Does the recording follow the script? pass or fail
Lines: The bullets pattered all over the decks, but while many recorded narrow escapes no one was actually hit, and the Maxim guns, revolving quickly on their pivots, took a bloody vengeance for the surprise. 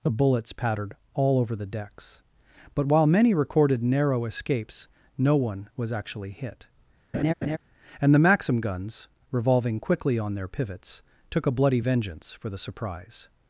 pass